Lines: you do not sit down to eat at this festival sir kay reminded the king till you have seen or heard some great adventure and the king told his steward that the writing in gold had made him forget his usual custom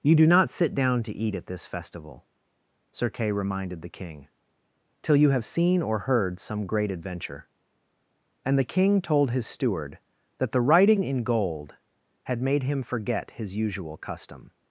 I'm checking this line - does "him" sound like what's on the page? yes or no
yes